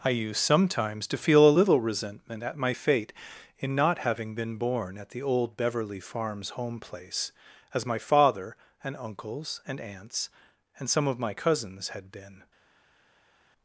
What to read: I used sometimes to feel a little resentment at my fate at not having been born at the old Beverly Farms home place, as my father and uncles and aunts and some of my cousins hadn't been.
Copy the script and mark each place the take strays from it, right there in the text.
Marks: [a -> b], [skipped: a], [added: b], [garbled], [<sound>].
I used sometimes to feel a little resentment at my fate [at -> in] not having been born at the old Beverly Farms home place, as my father and uncles and aunts and some of my cousins [hadn't -> had] been.